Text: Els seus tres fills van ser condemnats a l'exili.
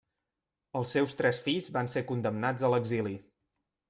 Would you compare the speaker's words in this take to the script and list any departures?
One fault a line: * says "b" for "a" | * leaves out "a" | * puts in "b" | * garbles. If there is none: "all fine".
all fine